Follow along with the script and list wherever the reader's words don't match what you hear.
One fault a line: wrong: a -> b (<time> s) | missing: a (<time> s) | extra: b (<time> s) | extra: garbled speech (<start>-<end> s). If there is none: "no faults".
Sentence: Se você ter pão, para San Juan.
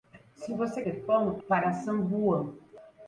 no faults